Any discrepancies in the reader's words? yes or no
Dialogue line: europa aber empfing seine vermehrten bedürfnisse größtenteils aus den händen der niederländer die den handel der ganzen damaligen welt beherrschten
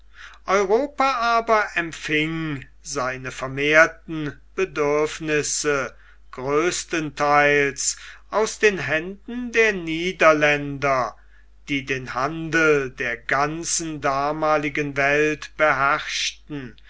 no